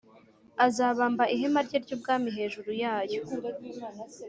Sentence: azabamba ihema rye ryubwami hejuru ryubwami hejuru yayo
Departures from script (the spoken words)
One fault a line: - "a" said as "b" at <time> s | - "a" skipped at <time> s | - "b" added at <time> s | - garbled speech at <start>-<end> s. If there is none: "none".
- "ryubwami hejuru" skipped at 2.7 s